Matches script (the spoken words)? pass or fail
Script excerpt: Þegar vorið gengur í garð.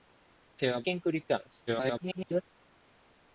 fail